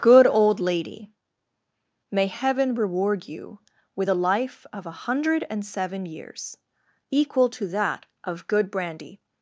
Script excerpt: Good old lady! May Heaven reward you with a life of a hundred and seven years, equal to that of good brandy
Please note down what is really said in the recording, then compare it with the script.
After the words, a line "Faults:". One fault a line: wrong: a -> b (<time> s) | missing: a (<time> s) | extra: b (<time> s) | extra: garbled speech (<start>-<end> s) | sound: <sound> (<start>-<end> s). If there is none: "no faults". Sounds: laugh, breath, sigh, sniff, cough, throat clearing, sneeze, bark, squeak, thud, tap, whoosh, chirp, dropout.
Good old lady! May Heaven reward you with a life of a hundred and seven years, equal to that of good brandy
Faults:
no faults